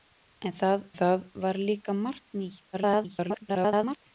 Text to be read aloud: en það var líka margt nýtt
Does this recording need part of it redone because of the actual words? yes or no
yes